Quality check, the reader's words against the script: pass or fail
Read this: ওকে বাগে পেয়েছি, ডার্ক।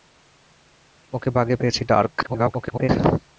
fail